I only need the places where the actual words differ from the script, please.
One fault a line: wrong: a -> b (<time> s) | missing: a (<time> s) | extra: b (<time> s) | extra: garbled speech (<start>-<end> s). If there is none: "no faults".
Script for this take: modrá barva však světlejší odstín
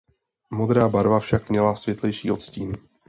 extra: měla (1.5 s)